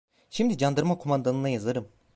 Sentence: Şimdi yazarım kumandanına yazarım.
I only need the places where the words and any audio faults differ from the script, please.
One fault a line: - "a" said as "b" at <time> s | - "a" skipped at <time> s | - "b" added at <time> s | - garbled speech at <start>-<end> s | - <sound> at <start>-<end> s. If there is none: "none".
- "yazarım" said as "candarma" at 0.6 s